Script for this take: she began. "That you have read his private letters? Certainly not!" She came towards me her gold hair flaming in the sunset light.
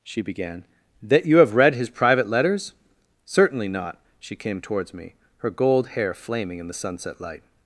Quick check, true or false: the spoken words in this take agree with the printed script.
true